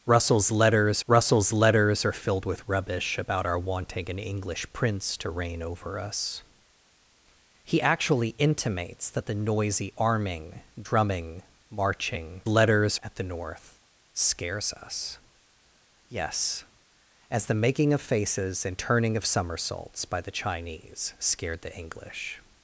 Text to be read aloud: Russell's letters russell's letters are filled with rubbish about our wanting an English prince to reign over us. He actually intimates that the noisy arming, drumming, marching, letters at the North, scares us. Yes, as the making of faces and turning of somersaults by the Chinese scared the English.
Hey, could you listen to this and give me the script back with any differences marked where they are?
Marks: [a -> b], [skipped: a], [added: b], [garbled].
Russell's letters russell's letters are filled with rubbish about our wanting an English prince to reign over us. He actually intimates that the noisy arming, drumming, marching, letters at the North, scares us. Yes, as the making of faces and turning of somersaults by the Chinese scared the English.